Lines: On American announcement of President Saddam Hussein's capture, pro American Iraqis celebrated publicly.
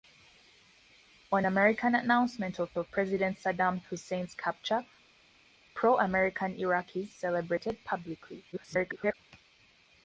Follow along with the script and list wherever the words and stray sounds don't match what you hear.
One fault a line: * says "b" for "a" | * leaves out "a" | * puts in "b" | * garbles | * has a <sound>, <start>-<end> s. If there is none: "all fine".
* puts in "of"
* garbles